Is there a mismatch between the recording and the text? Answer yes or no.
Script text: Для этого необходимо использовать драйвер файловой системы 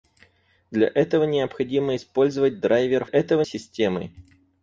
yes